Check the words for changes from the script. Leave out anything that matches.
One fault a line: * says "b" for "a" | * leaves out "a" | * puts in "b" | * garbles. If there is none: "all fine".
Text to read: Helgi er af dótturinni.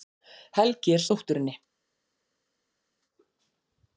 all fine